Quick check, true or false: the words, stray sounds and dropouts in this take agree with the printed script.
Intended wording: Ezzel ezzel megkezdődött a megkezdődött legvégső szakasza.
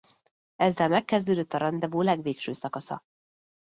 false